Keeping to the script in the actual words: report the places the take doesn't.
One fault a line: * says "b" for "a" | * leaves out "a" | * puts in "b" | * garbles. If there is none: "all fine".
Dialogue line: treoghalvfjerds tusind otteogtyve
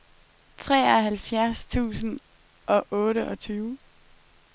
* puts in "og"